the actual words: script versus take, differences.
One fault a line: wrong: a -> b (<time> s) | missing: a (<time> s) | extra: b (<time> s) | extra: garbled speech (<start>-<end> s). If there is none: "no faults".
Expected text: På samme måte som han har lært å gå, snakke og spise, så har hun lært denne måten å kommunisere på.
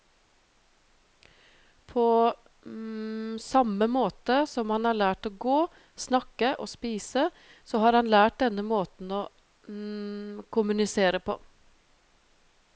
wrong: hun -> han (8.0 s)